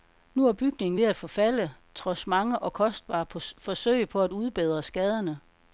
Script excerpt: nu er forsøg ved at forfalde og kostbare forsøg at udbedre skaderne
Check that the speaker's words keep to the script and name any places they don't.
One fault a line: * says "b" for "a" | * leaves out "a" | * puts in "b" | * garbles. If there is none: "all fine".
* says "bygningen" for "forsøg"
* puts in "trods mange"
* puts in "på"